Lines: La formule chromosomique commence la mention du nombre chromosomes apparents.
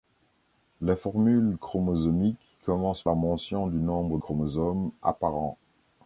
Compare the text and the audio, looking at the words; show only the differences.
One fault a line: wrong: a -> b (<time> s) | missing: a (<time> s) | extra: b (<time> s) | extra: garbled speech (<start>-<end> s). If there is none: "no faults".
no faults